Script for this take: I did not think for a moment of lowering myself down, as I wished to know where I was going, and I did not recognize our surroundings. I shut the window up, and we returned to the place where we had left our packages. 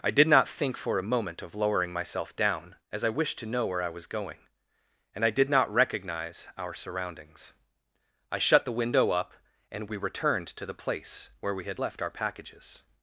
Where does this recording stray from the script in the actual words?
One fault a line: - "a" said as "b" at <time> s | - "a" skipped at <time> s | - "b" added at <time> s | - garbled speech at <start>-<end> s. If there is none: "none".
none